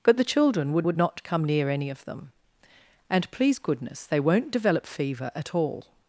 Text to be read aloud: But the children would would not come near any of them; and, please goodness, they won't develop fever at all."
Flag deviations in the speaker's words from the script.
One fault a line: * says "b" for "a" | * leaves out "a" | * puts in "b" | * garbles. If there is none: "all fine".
all fine